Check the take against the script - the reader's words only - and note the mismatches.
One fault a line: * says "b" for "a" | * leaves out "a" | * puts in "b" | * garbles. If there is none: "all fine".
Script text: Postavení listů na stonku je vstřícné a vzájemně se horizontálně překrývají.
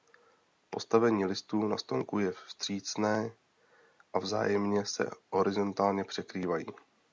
all fine